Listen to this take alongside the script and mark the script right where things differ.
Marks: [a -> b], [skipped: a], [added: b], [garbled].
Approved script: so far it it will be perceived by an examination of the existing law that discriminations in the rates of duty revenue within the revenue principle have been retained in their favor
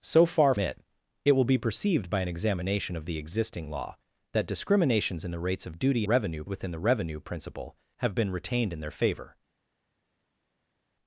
so far it it will be perceived by an examination of the existing law that discriminations in the rates of duty revenue within the revenue principle have been retained in their favor